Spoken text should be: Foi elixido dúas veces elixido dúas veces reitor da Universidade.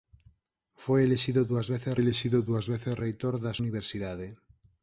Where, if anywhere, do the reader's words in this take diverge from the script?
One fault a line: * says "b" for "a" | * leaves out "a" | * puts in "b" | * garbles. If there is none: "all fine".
all fine